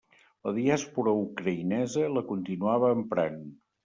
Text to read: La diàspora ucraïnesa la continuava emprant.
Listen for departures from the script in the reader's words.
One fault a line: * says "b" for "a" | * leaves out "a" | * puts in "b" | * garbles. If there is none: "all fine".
all fine